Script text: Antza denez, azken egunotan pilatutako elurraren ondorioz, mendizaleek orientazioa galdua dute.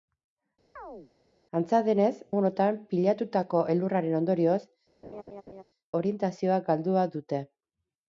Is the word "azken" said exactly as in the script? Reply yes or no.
no